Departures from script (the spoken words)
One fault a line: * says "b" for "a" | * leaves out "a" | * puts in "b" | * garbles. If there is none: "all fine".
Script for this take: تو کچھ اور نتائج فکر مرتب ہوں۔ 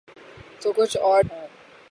* leaves out "نتائج فکر مرتب"